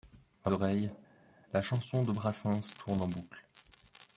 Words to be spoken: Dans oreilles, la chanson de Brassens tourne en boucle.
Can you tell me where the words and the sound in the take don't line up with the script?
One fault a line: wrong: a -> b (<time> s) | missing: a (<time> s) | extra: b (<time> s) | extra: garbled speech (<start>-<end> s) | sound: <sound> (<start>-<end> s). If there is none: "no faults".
no faults